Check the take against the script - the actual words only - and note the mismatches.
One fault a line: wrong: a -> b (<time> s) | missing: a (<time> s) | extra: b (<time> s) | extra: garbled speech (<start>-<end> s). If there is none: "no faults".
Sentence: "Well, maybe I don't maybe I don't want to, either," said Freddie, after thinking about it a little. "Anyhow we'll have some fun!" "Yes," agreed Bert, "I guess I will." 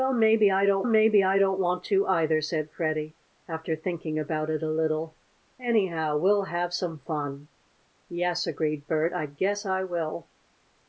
no faults